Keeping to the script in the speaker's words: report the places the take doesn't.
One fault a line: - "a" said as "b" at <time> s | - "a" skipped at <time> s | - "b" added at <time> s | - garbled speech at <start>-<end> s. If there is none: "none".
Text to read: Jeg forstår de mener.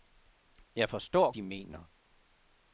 none